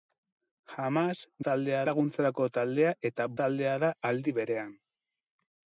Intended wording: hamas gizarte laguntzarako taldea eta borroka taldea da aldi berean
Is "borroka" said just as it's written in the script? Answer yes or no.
no